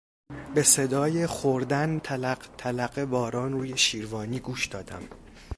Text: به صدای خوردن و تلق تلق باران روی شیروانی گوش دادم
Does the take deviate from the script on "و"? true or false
true